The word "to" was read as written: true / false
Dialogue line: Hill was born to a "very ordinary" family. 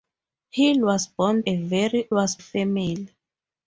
false